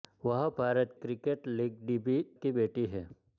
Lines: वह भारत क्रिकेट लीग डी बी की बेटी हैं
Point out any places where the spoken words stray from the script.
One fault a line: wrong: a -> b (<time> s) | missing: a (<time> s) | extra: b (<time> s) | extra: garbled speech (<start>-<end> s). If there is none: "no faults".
no faults